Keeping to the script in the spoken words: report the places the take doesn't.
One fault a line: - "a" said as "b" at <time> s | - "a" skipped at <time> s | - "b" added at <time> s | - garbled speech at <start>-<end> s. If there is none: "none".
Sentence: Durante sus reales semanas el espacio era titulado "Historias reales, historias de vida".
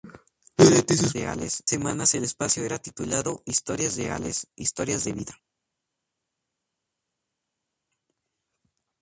none